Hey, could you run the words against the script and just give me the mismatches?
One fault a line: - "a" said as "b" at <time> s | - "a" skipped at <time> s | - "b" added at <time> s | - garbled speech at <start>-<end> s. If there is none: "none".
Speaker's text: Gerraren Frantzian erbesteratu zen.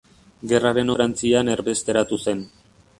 none